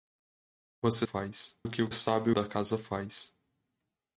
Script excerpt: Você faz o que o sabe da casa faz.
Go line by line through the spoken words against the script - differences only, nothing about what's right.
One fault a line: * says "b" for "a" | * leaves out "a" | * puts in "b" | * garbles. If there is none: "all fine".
all fine